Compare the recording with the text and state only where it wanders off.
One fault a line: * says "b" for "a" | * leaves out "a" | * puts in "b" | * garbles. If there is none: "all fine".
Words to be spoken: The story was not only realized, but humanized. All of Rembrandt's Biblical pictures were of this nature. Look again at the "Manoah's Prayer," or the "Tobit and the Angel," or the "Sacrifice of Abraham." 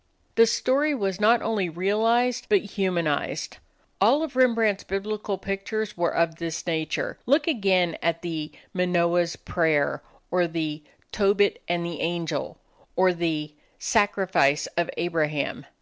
all fine